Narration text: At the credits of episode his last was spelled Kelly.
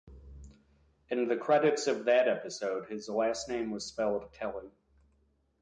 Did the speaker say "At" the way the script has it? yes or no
no